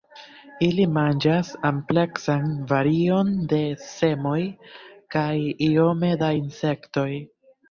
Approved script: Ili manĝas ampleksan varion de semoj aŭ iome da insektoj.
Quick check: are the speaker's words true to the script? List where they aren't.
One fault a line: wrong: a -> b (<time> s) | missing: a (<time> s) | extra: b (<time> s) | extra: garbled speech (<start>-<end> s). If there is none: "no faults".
wrong: aŭ -> kaj (5.2 s)